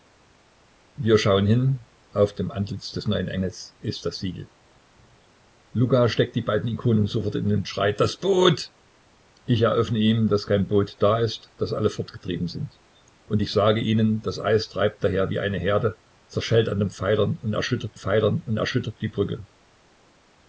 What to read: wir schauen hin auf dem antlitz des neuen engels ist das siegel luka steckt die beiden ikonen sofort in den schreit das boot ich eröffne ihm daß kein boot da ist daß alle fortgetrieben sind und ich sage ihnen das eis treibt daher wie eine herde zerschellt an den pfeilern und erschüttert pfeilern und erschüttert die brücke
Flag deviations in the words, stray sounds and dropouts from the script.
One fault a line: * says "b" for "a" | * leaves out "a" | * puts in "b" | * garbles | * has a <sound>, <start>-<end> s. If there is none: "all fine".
all fine